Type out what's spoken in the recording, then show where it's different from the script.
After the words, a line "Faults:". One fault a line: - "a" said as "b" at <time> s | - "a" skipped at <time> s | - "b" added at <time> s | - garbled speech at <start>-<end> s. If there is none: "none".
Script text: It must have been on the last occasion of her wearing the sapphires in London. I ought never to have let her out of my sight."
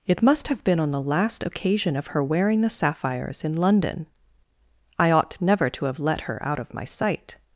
It must have been on the last occasion of her wearing the sapphires in London. I ought never to have let her out of my sight."
Faults:
none